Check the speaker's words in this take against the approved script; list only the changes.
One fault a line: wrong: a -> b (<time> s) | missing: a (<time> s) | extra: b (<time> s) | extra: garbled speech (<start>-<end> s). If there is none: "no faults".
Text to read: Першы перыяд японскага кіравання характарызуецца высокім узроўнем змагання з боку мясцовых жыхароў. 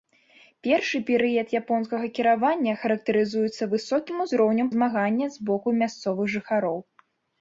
no faults